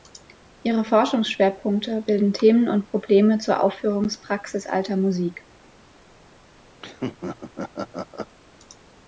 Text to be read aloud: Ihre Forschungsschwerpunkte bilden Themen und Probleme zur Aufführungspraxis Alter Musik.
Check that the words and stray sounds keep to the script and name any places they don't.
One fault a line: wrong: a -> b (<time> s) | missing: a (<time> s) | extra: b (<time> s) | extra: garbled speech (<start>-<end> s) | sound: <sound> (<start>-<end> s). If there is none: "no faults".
sound: laugh (6.8-8.3 s)